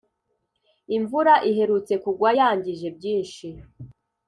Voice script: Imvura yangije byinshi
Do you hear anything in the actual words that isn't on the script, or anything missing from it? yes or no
yes